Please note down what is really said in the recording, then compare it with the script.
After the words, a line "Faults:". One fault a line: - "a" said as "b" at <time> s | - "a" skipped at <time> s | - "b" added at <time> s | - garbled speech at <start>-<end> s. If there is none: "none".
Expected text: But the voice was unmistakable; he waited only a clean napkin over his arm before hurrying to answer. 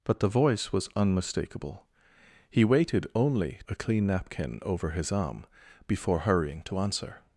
But the voice was unmistakable; he waited only a clean napkin over his arm before hurrying to answer.
Faults:
none